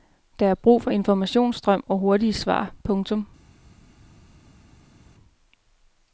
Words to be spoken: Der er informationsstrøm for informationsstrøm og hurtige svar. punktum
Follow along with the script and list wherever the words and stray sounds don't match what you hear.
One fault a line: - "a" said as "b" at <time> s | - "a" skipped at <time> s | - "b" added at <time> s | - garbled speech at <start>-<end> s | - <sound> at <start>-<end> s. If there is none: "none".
- "informationsstrøm" said as "brug" at 0.6 s